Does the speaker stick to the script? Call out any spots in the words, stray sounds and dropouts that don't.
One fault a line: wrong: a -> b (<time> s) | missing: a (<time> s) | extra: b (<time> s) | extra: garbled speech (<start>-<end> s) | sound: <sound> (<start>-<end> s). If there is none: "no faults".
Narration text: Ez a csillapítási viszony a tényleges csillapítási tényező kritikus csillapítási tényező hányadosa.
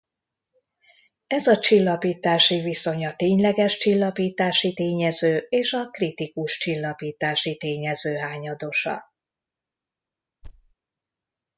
extra: és a (5.5 s)
sound: thud (10.4-10.7 s)